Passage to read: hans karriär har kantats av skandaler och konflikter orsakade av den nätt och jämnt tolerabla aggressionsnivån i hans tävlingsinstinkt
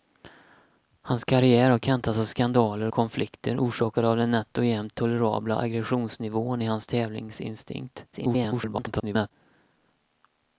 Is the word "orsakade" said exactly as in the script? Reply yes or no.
yes